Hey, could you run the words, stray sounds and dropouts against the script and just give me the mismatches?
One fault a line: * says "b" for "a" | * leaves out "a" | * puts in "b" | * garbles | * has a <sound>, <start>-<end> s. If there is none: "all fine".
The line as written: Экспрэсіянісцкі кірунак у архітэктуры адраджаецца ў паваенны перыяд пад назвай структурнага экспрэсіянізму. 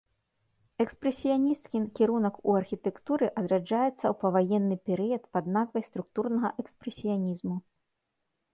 all fine